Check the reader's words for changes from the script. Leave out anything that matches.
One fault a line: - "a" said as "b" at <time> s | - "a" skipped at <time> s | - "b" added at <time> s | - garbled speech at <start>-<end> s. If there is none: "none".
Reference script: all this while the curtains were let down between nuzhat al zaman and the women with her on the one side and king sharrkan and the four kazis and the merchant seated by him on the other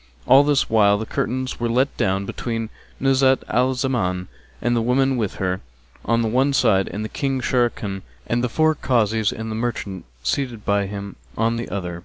none